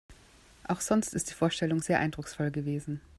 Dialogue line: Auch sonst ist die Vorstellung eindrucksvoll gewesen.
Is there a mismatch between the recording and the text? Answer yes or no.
yes